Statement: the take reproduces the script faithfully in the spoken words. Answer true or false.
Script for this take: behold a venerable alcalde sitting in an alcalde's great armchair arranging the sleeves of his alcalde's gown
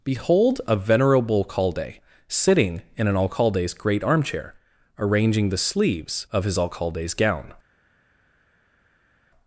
true